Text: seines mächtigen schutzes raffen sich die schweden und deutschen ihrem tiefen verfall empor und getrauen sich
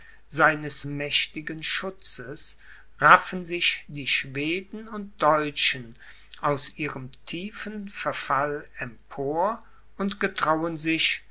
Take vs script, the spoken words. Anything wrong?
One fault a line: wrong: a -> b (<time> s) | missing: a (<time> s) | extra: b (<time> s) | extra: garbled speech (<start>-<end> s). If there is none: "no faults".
extra: aus (6.4 s)